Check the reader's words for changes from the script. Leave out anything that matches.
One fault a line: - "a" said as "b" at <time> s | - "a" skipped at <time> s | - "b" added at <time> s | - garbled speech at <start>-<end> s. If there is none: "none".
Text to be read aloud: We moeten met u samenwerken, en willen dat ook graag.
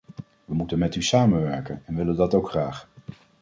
none